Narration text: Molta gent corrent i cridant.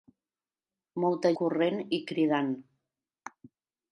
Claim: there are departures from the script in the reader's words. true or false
true